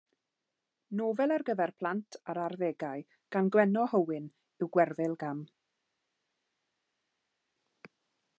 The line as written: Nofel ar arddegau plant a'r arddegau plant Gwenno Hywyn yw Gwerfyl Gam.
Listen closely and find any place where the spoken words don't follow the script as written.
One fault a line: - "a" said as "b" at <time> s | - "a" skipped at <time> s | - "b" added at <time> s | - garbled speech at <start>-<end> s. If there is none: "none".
- "arddegau" said as "gyfer" at 1.5 s
- "plant" said as "gan" at 3.4 s